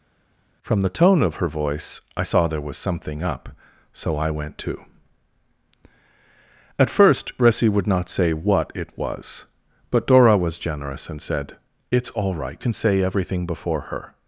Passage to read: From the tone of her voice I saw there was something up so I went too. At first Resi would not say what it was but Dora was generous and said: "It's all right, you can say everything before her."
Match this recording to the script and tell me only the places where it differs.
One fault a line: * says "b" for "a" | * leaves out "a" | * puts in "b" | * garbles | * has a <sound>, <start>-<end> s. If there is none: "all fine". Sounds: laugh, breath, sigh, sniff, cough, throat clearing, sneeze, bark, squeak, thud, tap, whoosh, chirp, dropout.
* leaves out "you"